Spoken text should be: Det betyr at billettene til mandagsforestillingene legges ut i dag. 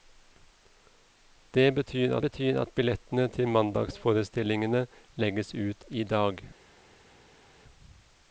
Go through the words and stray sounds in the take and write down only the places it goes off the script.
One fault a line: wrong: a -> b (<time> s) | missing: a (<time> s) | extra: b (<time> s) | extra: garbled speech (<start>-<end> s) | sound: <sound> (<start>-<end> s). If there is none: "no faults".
extra: betyr (2.2 s)